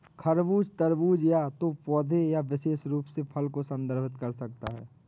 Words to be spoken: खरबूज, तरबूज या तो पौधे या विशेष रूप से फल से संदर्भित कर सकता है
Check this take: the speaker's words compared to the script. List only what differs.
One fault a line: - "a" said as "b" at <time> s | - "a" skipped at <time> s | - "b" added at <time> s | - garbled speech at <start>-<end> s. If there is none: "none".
- "से" said as "को" at 3.5 s